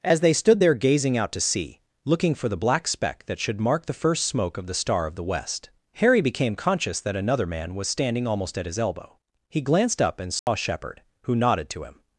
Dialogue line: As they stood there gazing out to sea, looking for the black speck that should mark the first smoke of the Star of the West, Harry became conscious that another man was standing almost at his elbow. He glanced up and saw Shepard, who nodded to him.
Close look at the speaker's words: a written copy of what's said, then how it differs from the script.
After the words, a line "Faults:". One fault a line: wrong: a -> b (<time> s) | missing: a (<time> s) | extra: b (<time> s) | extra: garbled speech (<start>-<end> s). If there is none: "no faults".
As they stood there gazing out to sea, looking for the black speck that should mark the first smoke of the Star of the West, Harry became conscious that another man was standing almost at his elbow. He glanced up and saw Shepard, who nodded to him.
Faults:
no faults